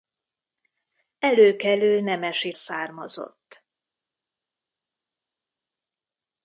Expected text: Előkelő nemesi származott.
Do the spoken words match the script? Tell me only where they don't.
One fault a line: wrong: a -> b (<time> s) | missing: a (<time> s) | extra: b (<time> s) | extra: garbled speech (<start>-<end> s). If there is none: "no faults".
no faults